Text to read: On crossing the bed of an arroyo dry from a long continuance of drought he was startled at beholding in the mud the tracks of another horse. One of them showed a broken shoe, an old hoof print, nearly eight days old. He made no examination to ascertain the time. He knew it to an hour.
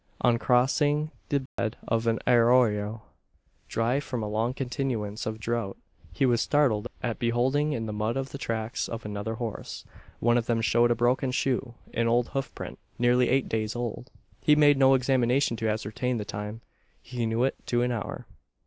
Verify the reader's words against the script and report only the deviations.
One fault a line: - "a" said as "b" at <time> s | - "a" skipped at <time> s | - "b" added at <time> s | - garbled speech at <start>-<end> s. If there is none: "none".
none